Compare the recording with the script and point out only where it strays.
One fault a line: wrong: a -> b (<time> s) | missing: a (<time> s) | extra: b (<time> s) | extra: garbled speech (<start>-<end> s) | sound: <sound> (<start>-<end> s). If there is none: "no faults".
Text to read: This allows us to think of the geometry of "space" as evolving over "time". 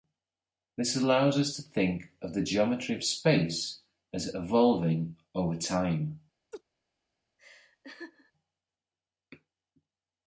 sound: laugh (6.5-6.6 s)
sound: laugh (7.4-8.3 s)